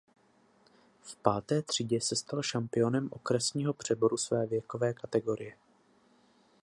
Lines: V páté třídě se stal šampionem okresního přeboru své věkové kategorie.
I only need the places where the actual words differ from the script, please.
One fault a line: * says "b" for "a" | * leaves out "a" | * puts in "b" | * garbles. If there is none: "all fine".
all fine